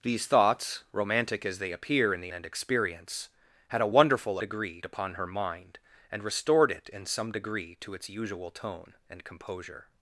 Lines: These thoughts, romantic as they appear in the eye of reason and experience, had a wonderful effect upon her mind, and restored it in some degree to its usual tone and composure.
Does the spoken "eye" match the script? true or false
false